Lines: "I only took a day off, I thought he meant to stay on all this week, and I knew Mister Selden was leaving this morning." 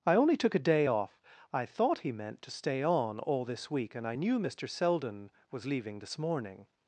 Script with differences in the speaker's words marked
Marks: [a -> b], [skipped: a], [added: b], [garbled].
"I only took a day off, I thought he meant to stay on all this week, and I knew Mister Selden was leaving this morning."